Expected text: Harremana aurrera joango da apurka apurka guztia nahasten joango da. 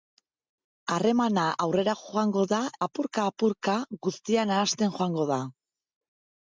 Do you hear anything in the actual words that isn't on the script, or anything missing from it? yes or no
no